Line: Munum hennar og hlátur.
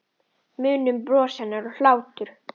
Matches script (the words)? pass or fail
fail